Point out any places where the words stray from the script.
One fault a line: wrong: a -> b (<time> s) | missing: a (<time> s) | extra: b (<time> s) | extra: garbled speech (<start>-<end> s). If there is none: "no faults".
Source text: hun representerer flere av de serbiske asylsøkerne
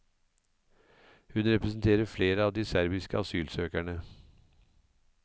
no faults